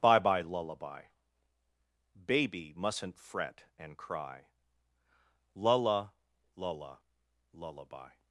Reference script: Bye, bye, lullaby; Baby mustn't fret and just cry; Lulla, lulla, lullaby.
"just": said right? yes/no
no